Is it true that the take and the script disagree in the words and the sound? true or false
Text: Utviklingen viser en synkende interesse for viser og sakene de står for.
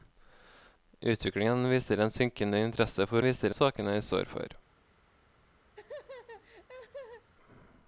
true